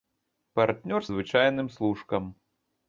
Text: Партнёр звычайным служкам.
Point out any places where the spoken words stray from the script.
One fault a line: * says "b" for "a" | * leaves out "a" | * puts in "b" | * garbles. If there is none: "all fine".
all fine